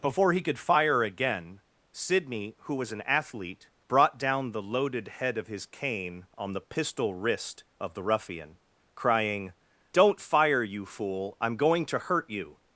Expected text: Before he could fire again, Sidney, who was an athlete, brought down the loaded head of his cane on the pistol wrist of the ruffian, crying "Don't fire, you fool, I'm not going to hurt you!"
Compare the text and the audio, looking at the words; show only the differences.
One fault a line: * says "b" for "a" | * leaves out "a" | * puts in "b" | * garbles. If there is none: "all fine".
* leaves out "not"